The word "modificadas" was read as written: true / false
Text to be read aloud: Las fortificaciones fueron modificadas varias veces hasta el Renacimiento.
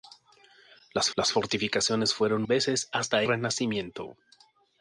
false